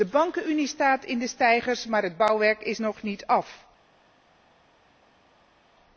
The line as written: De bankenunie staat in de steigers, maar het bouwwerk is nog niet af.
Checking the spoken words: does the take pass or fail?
pass